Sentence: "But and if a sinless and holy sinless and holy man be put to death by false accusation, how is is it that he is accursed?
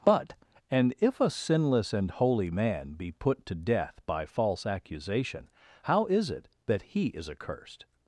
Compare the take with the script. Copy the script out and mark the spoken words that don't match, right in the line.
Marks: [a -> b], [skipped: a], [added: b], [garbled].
"But and if a sinless and holy [skipped: sinless and holy] man be put to death by false accusation, how is [skipped: is] it that he is accursed?